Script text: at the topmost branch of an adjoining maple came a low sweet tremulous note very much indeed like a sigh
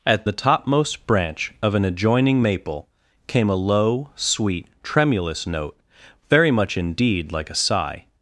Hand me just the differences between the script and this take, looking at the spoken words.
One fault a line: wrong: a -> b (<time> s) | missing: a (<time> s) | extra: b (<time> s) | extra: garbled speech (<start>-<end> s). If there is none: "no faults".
no faults